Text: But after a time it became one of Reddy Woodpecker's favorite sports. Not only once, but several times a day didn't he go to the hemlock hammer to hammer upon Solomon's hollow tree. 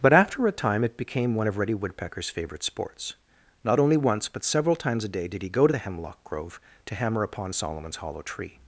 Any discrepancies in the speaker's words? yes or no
yes